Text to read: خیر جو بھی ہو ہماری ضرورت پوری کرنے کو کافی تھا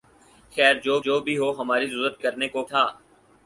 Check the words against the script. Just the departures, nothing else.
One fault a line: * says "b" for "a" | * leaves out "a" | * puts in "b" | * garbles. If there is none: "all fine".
* puts in "جو"
* leaves out "پوری"
* leaves out "کافی"